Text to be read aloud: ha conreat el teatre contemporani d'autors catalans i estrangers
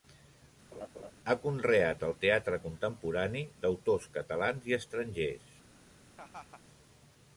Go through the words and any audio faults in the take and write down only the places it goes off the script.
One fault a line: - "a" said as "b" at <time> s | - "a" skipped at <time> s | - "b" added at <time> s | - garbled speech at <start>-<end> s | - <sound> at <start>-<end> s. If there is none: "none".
- laugh at 0.7-1.1 s
- laugh at 6.2-6.6 s